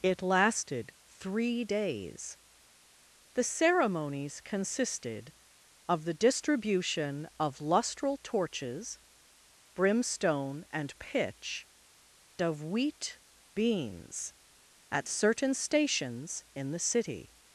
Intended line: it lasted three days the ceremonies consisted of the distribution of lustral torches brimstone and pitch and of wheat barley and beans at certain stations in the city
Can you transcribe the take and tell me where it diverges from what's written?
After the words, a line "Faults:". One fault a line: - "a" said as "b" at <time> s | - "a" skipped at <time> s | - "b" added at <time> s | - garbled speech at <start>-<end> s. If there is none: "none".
it lasted three days the ceremonies consisted of the distribution of lustral torches brimstone and pitch of wheat beans at certain stations in the city
Faults:
- "and" skipped at 11.7 s
- "barley and" skipped at 13.2 s